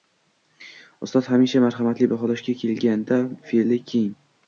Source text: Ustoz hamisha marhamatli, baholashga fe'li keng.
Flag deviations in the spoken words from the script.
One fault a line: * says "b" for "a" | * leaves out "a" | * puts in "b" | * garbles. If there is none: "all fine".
* puts in "kelganda"